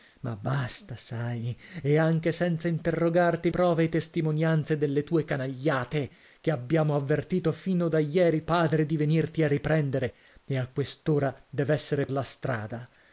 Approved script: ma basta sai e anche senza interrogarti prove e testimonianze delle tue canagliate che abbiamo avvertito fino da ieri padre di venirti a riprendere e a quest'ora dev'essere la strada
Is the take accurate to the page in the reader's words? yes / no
yes